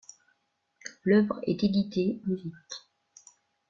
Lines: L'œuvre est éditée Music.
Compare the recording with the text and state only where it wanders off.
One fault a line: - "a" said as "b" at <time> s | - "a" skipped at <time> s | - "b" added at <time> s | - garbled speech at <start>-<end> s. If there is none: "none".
none